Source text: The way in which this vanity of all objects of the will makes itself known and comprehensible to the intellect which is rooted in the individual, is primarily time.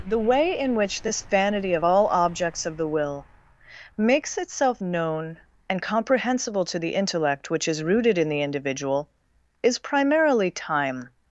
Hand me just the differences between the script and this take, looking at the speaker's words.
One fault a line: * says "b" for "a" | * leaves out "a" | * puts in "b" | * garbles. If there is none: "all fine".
all fine